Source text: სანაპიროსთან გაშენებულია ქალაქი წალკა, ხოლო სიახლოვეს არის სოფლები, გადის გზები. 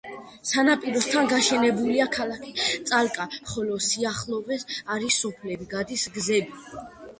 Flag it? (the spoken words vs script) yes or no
no